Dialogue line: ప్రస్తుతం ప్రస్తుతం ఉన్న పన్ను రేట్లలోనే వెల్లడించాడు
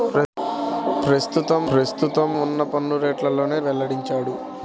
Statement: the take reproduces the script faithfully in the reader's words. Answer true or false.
true